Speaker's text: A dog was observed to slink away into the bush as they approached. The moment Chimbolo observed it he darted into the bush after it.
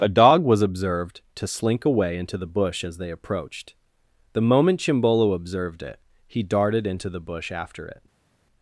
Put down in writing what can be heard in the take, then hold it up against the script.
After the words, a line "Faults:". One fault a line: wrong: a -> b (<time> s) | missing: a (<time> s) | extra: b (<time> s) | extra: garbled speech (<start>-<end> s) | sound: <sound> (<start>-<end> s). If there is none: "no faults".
A dog was observed to slink away into the bush as they approached. The moment Chimbolo observed it he darted into the bush after it.
Faults:
no faults